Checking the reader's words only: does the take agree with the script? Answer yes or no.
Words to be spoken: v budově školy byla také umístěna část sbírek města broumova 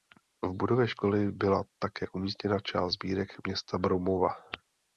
yes